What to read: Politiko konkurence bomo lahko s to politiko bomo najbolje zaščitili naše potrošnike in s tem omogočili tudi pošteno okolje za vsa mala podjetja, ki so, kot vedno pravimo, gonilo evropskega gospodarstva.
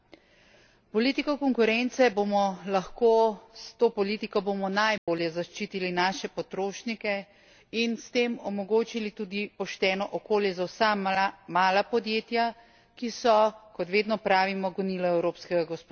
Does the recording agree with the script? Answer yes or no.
yes